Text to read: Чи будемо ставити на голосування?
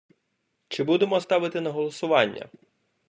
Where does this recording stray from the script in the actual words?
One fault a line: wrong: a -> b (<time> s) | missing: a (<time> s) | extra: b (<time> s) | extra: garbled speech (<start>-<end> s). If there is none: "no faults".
no faults